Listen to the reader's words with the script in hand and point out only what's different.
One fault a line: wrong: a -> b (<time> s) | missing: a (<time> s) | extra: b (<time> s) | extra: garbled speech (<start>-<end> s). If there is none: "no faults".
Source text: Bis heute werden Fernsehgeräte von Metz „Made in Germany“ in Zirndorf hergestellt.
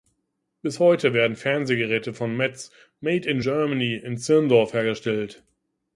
no faults